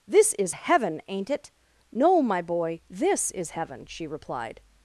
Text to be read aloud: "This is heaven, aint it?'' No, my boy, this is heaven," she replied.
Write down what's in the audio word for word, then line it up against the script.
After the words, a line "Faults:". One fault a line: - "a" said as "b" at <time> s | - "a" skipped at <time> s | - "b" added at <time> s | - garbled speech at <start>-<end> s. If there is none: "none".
"This is heaven, aint it?'' No, my boy, this is heaven," she replied.
Faults:
none